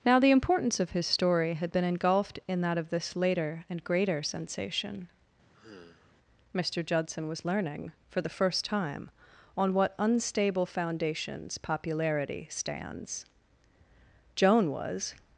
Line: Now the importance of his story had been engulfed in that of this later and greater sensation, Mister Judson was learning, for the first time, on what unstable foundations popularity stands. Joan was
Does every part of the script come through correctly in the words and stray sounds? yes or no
no